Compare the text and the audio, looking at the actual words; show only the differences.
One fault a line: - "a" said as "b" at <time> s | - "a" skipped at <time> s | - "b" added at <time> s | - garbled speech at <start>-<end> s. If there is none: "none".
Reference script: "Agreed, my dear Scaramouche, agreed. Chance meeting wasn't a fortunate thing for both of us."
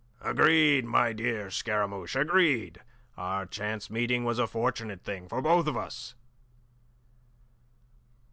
- "Our" added at 3.2 s
- "wasn't" said as "was" at 4.2 s